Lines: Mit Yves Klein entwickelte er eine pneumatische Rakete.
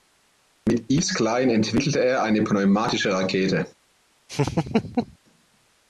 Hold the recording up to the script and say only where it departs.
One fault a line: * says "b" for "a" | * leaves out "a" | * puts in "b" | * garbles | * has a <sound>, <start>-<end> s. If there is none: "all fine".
* has a laugh, 4.3-5.2 s